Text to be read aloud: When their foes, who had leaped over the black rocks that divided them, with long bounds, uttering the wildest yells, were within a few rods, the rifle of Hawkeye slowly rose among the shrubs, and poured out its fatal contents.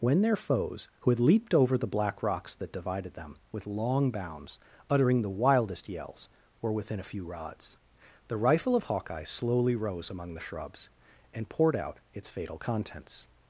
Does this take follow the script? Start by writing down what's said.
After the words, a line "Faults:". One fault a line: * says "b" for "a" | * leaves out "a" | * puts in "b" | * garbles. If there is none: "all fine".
When their foes, who had leaped over the black rocks that divided them, with long bounds, uttering the wildest yells, were within a few rods, the rifle of Hawkeye slowly rose among the shrubs, and poured out its fatal contents.
Faults:
all fine